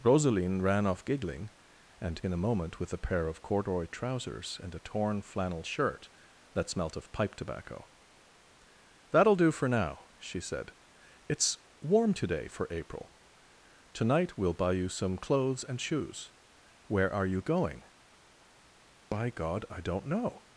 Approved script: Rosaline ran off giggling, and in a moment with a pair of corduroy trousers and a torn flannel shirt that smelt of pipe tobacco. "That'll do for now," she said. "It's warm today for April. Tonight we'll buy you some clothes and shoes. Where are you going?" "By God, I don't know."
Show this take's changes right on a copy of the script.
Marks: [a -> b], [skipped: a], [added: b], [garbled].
Rosaline ran off giggling, and in a moment with a pair of corduroy trousers and a torn flannel shirt that smelt of pipe tobacco. "That'll do for now," she said. "It's warm today for April. Tonight we'll buy you some clothes and shoes. Where are you going?" "By God, I don't know."